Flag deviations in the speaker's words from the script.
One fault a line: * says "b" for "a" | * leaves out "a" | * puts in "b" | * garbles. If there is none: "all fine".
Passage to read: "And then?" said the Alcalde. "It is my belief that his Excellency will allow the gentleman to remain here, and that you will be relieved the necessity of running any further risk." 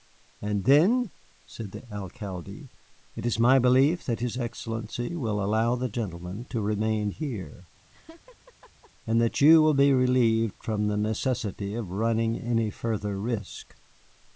* puts in "from"